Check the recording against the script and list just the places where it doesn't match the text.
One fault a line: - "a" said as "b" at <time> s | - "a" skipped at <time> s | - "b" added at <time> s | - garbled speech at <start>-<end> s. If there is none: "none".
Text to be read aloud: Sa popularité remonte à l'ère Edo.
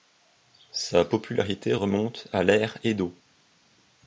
none